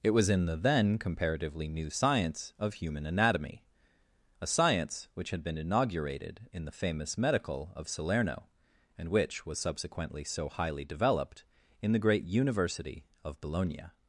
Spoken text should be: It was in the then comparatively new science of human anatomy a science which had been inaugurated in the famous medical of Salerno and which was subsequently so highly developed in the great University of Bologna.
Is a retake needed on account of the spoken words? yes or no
no